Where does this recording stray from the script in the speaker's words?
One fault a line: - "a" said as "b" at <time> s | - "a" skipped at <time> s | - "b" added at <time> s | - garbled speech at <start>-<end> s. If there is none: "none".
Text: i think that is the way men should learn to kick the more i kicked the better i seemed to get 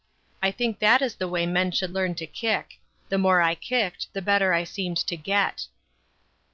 none